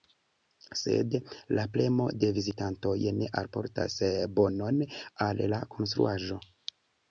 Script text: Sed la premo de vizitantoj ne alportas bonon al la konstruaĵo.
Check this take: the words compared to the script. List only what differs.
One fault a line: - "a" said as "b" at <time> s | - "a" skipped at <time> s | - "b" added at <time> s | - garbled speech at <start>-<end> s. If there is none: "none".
none